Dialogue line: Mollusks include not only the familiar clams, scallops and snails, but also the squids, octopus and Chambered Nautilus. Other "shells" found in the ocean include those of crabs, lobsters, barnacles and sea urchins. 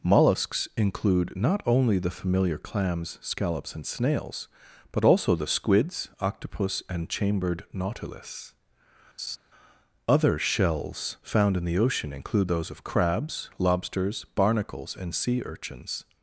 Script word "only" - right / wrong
right